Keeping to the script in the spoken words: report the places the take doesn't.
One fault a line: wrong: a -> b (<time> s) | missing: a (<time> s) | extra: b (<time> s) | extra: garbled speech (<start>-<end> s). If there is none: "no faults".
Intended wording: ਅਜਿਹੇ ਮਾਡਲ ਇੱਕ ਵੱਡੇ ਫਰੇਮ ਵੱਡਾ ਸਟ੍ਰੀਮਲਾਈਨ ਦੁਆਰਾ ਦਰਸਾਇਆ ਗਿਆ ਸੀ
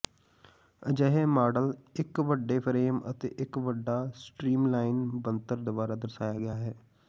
extra: ਅਤੇ ਇੱਕ (3.1 s)
extra: ਬਣਤਰ (5.2 s)
wrong: ਸੀ -> ਹੈ (6.5 s)